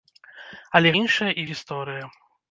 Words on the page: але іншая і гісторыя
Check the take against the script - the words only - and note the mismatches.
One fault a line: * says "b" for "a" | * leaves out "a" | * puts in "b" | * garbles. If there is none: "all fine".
all fine